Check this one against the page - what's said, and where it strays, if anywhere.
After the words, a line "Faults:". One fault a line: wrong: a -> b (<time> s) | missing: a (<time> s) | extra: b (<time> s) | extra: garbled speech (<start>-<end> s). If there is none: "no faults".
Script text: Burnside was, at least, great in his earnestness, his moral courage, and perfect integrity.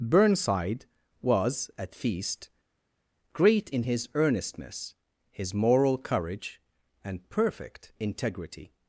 Burnside was, at feast, great in his earnestness, his moral courage, and perfect integrity.
Faults:
wrong: least -> feast (1.9 s)